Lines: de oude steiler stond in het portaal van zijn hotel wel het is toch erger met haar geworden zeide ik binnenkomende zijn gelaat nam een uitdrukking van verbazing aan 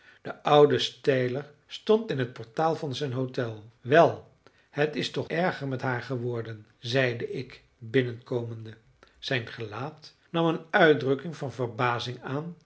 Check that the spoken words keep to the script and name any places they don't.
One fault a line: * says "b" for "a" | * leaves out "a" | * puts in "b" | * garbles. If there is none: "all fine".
all fine